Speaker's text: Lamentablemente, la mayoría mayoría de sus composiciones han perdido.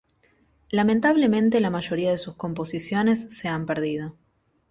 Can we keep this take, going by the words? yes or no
no